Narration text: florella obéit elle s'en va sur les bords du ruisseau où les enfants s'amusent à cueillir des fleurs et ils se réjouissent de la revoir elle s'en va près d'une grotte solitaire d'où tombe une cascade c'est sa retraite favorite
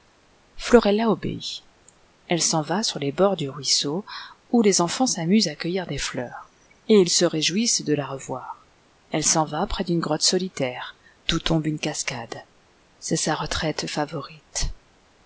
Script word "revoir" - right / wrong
right